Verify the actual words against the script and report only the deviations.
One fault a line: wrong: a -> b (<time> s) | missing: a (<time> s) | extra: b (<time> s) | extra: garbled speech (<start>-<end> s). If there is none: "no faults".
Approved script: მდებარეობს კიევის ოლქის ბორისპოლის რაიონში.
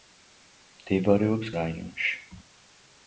missing: კიევის ოლქის ბორისპოლის (1.5 s)